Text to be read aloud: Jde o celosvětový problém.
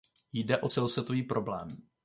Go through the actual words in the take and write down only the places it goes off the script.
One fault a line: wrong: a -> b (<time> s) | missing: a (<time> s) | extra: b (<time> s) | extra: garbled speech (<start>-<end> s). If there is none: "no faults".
no faults